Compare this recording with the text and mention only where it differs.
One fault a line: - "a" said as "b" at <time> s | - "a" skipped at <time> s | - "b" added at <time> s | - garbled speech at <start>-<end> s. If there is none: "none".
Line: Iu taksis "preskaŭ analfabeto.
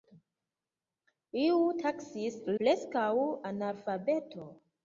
none